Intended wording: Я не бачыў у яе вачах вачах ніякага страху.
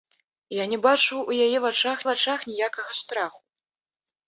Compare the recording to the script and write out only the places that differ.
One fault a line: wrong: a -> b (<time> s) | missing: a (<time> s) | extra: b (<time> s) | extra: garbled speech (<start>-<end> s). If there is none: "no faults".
no faults